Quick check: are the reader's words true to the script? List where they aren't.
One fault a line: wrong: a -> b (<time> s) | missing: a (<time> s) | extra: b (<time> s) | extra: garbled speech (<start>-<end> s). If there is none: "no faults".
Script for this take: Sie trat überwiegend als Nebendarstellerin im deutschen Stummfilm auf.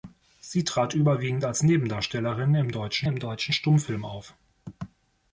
extra: im deutschen (3.0 s)